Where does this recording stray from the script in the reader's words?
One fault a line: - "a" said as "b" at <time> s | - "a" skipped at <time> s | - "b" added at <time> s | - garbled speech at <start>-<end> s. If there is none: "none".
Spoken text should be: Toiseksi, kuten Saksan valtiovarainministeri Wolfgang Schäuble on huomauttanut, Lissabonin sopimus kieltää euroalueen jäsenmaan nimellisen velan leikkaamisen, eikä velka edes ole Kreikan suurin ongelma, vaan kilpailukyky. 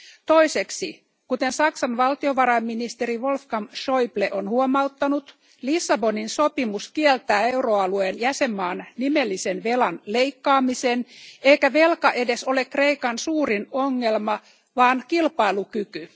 none